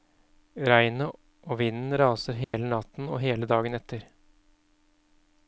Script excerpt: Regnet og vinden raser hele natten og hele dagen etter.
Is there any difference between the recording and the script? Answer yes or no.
no